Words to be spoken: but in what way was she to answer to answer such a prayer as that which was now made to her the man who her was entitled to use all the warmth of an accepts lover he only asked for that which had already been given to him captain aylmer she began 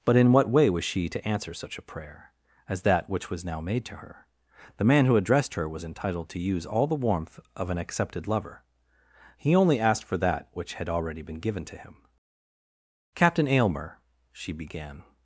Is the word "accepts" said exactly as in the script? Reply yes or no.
no